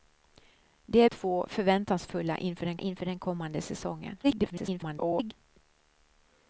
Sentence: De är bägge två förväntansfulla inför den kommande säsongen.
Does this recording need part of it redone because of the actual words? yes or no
yes